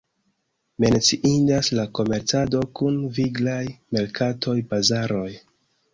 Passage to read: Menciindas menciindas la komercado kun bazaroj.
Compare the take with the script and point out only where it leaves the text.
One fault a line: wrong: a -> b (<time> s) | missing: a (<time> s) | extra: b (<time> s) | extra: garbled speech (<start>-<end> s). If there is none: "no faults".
missing: menciindas (1.7 s)
extra: viglaj merkatoj (3.2 s)